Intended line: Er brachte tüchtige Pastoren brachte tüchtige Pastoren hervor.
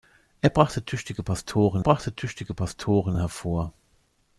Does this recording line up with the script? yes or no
yes